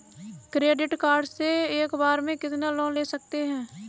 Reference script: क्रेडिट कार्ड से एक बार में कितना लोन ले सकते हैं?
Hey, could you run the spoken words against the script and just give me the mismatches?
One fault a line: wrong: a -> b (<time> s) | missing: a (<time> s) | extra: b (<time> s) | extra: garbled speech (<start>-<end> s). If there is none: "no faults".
no faults